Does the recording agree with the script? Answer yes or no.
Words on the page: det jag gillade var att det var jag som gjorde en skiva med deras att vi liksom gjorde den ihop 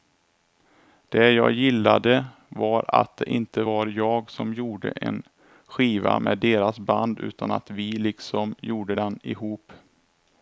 no